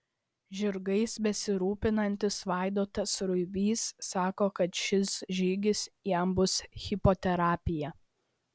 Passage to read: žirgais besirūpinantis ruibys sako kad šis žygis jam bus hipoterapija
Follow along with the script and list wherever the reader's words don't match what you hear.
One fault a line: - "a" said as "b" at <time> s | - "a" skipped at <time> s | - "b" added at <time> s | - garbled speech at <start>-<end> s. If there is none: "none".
- "vaidotas" added at 2.5 s